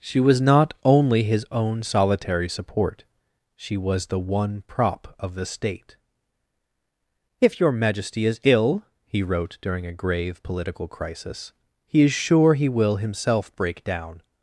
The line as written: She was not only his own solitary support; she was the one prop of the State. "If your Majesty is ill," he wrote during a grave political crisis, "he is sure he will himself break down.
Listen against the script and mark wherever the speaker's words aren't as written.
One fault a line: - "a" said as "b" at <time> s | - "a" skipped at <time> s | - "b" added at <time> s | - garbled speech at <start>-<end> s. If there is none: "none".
none